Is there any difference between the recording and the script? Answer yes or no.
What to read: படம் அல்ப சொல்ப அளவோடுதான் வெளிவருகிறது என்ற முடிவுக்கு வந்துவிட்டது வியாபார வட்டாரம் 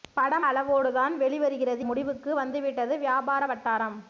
yes